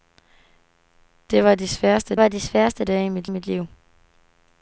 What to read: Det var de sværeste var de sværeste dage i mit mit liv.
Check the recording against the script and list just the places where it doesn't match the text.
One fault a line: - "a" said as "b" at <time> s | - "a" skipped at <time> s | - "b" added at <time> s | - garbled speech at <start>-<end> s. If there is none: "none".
none